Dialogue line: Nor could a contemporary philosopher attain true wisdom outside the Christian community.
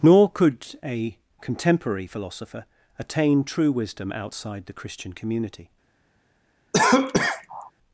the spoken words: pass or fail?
pass